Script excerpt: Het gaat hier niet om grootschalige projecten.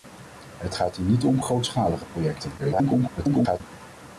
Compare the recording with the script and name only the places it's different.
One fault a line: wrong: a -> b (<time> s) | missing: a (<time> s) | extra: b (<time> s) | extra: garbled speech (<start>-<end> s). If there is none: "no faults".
extra: garbled speech (2.6-3.6 s)